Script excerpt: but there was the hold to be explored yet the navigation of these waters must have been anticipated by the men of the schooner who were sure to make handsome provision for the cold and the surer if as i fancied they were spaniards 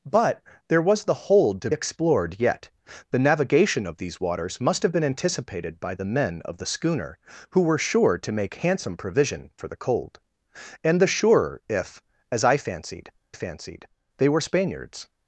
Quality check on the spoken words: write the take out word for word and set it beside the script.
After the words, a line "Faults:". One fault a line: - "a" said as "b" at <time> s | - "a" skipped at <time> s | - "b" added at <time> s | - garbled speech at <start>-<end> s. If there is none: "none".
but there was the hold to explored yet the navigation of these waters must have been anticipated by the men of the schooner who were sure to make handsome provision for the cold and the surer if as i fancied fancied they were spaniards
Faults:
- "be" skipped at 1.7 s
- "fancied" added at 13.3 s